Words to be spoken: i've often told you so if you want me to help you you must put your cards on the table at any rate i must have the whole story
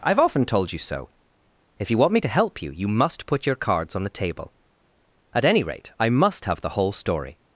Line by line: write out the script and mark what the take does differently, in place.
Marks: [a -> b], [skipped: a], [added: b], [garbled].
i've often told you so if you want me to help you you must put your cards on the table at any rate i must have the whole story